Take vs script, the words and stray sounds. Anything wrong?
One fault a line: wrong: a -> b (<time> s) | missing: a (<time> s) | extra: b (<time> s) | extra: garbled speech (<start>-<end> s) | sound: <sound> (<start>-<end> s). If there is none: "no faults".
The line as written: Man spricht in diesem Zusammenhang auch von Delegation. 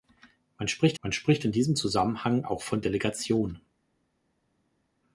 extra: man spricht (1.0 s)